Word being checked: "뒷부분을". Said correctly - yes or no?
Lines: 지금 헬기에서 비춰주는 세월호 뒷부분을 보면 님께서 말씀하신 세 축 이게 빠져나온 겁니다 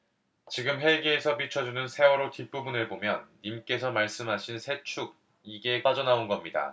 yes